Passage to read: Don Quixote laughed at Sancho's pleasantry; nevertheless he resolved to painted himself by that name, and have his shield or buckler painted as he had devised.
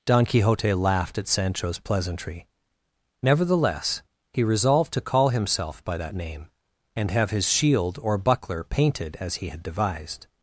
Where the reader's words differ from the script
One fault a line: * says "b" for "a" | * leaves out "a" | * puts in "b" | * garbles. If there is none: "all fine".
* says "call" for "painted"